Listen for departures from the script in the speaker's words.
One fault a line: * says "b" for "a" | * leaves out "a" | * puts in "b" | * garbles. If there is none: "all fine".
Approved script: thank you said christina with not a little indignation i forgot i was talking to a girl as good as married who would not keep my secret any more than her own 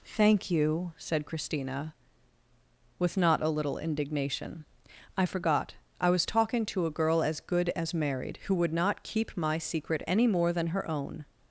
all fine